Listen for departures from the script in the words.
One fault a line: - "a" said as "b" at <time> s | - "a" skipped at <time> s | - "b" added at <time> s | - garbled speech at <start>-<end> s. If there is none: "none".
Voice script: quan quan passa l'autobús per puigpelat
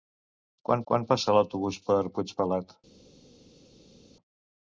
none